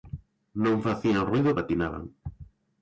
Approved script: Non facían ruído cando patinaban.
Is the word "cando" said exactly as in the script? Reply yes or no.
no